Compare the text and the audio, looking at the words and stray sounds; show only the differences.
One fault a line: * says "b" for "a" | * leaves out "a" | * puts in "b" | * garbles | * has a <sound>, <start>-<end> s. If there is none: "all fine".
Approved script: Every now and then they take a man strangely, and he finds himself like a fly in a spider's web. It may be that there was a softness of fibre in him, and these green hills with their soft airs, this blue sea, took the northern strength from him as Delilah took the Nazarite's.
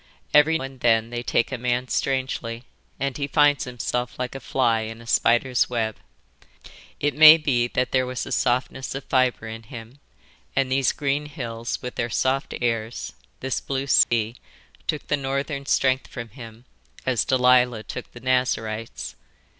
* leaves out "now"
* has a dropout, 14.0-14.1 s